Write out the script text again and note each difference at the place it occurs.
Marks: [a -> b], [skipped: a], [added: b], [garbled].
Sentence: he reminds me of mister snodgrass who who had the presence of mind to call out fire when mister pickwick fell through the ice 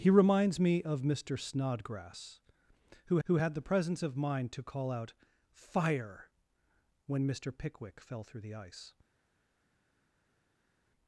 he reminds me of mister snodgrass who who had the presence of mind to call out fire when mister pickwick fell through the ice